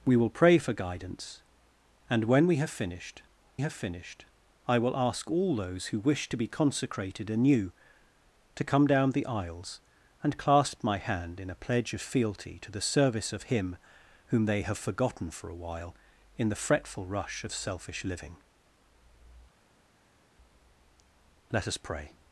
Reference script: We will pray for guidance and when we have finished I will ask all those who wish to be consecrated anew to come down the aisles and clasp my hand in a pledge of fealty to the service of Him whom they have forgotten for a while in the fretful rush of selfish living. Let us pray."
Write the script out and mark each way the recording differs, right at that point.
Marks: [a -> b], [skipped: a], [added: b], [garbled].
We will pray for guidance and when we have finished [added: have finished] I will ask all those who wish to be consecrated anew to come down the aisles and clasp my hand in a pledge of fealty to the service of Him whom they have forgotten for a while in the fretful rush of selfish living. Let us pray."